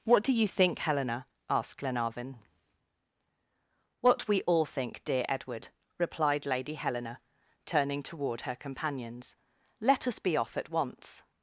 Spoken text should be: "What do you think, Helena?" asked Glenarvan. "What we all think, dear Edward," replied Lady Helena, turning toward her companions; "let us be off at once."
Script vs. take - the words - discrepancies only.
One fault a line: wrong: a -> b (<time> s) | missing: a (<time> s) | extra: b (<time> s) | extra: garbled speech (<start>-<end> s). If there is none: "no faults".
no faults